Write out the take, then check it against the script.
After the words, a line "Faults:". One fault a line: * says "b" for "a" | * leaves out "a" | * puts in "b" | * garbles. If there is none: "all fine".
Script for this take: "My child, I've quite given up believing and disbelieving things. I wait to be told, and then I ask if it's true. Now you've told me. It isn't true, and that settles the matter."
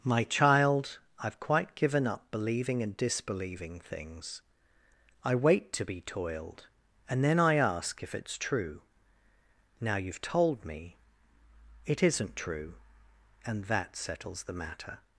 "My child, I've quite given up believing and disbelieving things. I wait to be toiled, and then I ask if it's true. Now you've told me. It isn't true, and that settles the matter."
Faults:
* says "toiled" for "told"